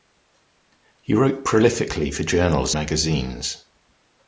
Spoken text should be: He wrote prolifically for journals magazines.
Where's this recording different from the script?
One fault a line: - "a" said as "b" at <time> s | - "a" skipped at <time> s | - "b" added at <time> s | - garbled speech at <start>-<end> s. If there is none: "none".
none